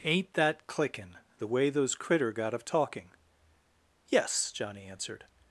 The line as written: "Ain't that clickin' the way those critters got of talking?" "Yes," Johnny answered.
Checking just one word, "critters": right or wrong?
wrong